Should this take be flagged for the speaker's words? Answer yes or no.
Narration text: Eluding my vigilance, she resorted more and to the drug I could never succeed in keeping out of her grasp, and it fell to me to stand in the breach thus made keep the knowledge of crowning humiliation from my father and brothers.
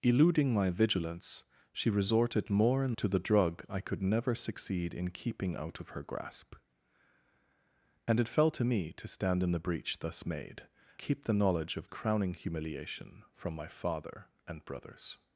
no